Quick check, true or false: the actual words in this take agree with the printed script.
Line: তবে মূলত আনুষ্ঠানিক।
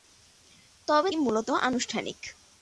true